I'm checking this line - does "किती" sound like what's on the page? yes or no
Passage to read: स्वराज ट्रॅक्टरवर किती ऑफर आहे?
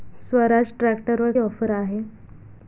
no